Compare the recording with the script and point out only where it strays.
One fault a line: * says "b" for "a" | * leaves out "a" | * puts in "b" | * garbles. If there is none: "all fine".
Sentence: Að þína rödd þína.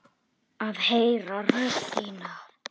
* says "heyra" for "þína"